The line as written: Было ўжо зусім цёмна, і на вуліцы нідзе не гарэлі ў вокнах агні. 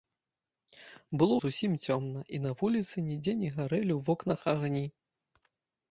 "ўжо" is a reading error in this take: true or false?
true